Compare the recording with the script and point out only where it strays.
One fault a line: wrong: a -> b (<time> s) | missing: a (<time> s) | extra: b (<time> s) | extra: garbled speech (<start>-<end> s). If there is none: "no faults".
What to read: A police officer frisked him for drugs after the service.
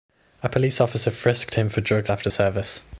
missing: the (2.3 s)